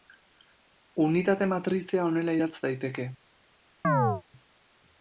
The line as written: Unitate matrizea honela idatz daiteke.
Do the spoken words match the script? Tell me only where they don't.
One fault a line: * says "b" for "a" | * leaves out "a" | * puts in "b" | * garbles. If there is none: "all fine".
all fine